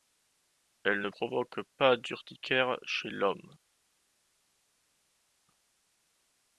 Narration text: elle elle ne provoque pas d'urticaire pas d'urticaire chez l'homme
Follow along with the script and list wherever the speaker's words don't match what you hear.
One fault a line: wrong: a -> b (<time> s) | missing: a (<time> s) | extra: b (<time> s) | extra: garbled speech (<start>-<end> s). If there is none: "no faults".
missing: elle (1.0 s)
missing: pas d'urticaire (2.8 s)